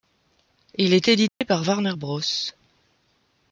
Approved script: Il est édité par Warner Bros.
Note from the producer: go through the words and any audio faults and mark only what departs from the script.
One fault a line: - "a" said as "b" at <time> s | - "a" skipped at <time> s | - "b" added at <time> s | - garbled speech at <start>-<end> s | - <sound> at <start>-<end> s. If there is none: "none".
- dropout at 1.3-1.4 s